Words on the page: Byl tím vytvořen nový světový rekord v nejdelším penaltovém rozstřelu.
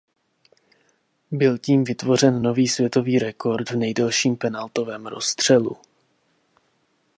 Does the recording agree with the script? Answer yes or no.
yes